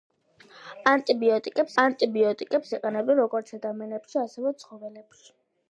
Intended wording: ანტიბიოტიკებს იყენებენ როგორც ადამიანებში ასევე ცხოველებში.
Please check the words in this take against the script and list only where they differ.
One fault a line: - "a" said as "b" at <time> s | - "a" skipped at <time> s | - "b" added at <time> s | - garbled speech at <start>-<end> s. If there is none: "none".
- "ანტიბიოტიკებს" added at 1.8 s